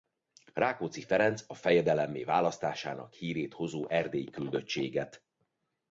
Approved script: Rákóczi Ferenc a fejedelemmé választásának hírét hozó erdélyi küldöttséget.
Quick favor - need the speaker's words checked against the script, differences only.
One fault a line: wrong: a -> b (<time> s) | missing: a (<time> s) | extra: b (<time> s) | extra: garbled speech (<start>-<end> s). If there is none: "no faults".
no faults